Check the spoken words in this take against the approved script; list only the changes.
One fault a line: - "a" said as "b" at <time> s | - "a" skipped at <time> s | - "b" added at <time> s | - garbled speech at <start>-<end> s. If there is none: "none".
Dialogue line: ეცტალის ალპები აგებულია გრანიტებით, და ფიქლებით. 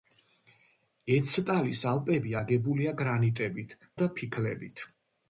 none